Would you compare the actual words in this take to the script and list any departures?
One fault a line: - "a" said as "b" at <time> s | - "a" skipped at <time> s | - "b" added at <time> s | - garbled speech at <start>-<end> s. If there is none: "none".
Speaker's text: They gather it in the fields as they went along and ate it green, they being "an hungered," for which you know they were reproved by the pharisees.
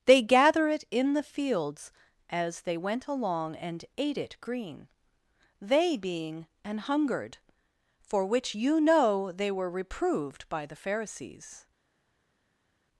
none